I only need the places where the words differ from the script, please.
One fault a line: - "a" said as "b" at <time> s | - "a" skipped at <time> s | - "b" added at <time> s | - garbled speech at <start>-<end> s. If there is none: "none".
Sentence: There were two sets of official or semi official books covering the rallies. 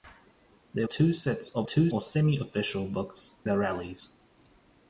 - "were" skipped at 0.9 s
- "official" said as "two" at 1.6 s
- "covering" skipped at 3.4 s